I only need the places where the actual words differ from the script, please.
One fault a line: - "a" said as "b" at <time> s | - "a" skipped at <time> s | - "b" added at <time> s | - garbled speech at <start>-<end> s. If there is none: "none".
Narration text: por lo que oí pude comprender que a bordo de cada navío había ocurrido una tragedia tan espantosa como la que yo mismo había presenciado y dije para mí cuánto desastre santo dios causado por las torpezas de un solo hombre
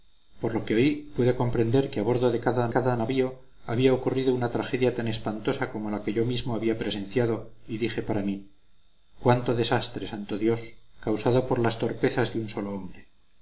- "cada" added at 2.7 s